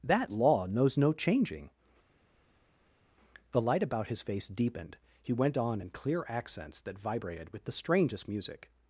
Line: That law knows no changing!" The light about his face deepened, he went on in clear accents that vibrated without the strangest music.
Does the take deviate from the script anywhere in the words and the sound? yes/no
yes